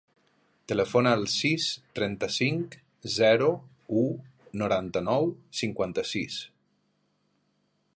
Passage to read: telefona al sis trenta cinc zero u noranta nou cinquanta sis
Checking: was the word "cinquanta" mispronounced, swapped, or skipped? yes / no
no